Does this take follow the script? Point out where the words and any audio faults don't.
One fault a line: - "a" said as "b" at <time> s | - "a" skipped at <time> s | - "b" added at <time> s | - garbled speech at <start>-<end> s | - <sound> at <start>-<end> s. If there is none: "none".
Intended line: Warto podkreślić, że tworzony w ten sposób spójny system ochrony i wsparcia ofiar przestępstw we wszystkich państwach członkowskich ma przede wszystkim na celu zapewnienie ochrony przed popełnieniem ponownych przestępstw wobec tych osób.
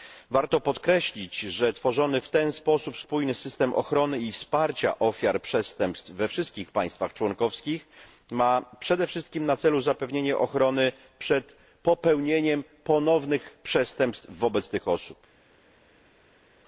none